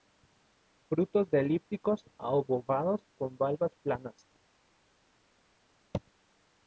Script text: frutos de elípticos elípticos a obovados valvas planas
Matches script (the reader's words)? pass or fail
fail